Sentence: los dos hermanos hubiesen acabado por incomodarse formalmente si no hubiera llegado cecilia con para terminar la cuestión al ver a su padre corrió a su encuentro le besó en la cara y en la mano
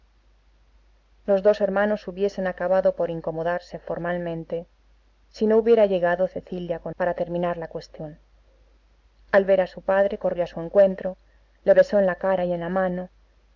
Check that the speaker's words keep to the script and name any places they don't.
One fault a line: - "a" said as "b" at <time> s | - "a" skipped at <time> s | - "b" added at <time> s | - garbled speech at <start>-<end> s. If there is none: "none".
none